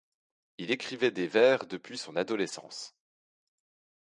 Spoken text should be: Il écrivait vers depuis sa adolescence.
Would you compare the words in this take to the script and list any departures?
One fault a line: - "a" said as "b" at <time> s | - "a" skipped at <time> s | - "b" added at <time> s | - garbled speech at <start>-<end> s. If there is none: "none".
- "des" added at 1.1 s
- "sa" said as "son" at 1.9 s